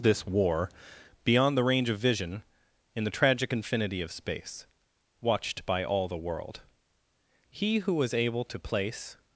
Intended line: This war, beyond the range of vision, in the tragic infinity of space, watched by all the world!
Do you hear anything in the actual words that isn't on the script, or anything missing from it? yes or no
yes